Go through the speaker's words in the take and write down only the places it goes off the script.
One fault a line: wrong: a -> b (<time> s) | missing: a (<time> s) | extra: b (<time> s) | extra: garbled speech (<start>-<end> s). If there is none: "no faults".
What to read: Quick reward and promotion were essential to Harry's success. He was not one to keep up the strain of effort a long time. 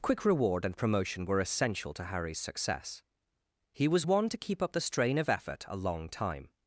missing: not (4.1 s)